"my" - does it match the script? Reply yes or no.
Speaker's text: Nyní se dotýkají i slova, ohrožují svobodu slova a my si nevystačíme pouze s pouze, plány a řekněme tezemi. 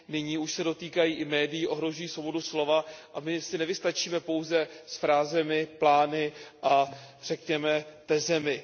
yes